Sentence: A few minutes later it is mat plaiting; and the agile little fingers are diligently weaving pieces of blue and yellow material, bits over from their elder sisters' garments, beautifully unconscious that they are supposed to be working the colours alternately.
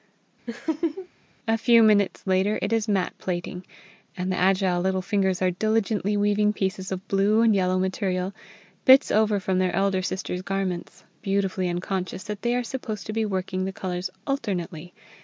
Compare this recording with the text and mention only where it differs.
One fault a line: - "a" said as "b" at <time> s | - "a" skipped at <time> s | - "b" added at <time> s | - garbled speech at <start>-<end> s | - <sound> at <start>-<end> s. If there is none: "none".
- laugh at 0.5-1.1 s